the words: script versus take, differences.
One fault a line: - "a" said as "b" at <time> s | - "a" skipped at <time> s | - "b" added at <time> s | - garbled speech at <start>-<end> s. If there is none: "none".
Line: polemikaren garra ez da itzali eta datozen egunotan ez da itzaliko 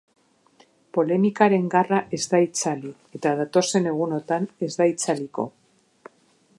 none